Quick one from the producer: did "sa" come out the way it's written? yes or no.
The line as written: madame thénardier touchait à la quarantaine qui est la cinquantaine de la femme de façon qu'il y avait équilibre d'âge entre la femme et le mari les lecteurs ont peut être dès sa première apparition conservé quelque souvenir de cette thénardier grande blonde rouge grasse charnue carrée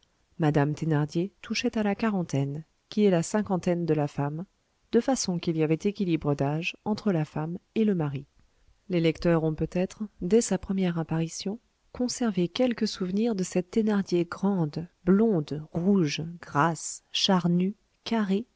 yes